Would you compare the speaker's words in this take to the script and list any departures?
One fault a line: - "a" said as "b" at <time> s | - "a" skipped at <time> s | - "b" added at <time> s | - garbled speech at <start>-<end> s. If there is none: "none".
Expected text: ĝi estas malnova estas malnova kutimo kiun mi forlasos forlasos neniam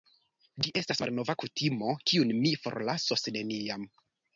- "estas malnova" skipped at 1.4 s
- "forlasos" skipped at 3.3 s